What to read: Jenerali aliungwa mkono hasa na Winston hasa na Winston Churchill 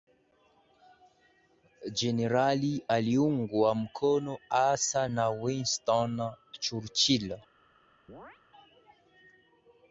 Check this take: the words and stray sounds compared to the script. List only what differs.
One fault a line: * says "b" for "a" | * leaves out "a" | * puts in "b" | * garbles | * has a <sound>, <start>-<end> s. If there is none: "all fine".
* leaves out "hasa na Winston"
* has a chirp, 8.1-8.4 s